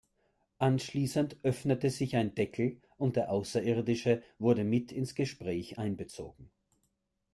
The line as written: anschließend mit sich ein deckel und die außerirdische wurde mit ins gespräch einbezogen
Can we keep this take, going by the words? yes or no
no